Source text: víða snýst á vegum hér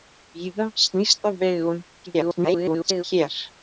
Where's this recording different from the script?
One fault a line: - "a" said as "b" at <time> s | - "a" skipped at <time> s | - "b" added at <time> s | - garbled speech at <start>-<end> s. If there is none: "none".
- garbled speech at 2.1-3.0 s